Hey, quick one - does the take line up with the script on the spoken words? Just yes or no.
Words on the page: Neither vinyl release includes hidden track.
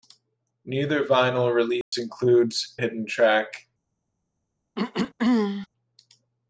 yes